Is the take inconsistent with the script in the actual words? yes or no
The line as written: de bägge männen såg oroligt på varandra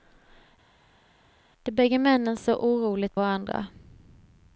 yes